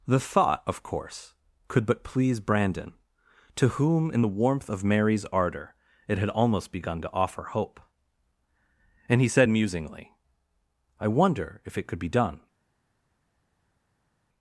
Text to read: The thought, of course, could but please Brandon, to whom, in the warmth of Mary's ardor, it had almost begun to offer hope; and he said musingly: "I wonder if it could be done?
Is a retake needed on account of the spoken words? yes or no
no